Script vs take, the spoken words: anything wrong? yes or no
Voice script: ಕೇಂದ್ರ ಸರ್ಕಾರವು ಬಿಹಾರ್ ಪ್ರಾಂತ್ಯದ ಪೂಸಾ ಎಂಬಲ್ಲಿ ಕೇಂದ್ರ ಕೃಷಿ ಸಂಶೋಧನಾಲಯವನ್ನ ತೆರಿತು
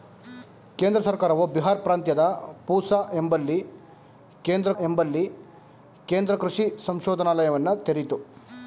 yes